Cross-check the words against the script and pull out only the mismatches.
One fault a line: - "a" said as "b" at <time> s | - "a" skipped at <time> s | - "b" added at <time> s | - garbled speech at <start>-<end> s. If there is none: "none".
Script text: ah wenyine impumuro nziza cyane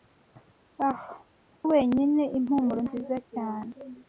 none